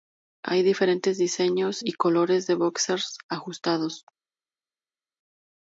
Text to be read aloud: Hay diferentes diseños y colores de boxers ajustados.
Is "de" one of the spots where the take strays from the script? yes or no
no